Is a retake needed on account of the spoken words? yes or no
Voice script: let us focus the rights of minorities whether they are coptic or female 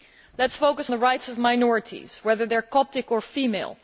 no